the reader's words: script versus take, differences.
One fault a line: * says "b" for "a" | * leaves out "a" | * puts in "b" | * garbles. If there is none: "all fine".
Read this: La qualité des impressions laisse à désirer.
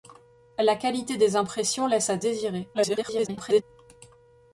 * garbles